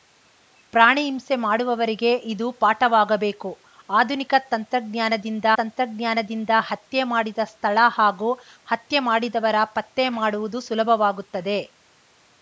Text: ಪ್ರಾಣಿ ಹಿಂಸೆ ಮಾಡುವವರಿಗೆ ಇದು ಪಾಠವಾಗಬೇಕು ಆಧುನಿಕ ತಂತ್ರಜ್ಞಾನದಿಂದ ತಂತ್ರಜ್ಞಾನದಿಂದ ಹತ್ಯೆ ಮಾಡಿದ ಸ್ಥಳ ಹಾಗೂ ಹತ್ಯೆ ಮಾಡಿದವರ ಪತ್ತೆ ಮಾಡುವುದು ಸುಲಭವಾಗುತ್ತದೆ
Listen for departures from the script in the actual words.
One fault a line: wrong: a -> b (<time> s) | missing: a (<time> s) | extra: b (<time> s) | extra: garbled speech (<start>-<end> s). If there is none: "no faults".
no faults